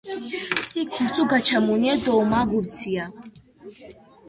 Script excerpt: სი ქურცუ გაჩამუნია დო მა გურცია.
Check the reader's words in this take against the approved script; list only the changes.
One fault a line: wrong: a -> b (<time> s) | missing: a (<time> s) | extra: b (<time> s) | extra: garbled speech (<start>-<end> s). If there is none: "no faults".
no faults